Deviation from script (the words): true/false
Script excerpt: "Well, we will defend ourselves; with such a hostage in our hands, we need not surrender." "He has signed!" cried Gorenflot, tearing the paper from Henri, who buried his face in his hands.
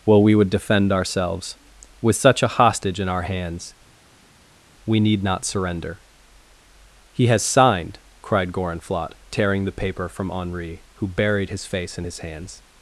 true